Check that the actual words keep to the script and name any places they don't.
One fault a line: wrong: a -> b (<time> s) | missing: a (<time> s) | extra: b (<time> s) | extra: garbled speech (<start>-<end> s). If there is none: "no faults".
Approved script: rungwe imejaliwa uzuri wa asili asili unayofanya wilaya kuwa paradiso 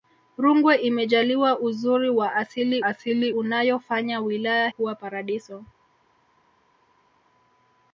no faults